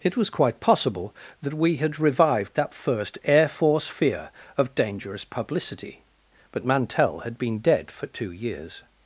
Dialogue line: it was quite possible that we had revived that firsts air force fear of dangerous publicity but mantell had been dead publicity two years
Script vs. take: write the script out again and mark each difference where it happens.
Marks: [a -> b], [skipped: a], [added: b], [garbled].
it was quite possible that we had revived that [firsts -> first] air force fear of dangerous publicity but mantell had been dead [publicity -> for] two years